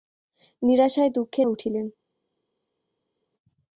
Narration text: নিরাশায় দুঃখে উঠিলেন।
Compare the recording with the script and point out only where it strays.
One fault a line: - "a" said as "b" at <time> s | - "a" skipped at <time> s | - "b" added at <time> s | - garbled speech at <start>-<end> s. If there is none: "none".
none